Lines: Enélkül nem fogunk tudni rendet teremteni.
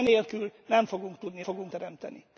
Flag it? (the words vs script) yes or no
yes